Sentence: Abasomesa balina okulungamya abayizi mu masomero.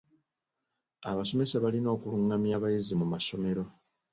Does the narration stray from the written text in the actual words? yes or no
no